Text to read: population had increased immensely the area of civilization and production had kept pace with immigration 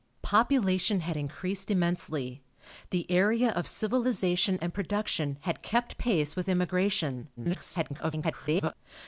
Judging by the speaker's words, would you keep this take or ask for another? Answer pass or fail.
fail